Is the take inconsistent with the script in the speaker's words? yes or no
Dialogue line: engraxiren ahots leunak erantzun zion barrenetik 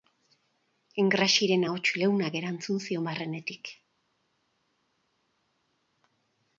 no